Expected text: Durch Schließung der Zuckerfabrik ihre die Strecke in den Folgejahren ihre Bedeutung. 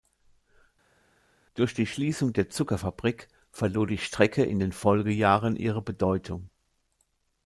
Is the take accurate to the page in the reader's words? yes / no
no